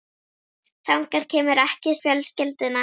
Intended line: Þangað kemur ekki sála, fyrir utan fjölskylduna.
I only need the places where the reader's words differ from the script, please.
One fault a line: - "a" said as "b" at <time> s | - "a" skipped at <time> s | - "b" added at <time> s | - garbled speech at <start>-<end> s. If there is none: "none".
- "sála fyrir utan" skipped at 2.0 s